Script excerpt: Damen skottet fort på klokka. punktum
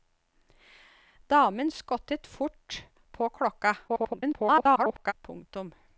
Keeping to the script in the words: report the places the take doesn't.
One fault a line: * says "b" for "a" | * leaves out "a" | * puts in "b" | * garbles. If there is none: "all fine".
* garbles